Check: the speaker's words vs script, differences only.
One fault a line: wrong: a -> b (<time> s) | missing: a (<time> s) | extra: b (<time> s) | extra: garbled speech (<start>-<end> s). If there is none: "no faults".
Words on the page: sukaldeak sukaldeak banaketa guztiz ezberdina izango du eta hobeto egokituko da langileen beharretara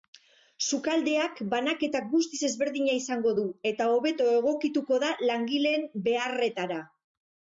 missing: sukaldeak (1.4 s)